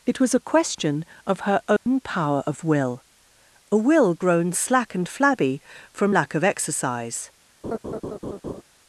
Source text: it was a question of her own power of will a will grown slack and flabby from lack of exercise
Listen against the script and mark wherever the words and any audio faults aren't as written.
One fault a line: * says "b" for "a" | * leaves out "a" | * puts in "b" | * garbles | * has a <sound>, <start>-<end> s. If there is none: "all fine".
* has a dropout, 1.8-1.9 s
* has a laugh, 7.6-8.6 s